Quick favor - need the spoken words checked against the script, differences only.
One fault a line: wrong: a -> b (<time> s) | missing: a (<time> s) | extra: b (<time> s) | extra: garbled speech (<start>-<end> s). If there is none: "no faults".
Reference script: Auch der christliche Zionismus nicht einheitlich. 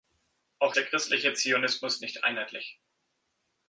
no faults